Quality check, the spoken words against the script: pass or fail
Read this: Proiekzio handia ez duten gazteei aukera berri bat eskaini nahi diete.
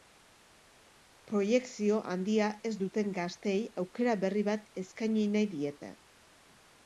pass